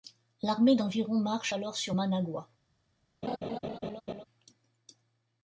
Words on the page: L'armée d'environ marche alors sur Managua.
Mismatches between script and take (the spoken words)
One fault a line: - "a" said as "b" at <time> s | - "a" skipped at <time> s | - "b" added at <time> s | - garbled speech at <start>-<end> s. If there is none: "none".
none